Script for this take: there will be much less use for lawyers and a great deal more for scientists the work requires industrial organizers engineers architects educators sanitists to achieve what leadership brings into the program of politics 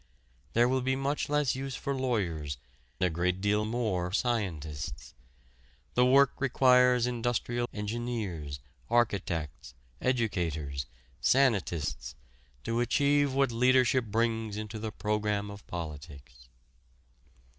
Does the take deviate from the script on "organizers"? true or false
true